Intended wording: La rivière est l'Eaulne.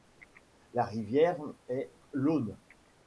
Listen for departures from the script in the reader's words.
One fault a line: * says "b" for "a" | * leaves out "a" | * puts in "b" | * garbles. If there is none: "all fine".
all fine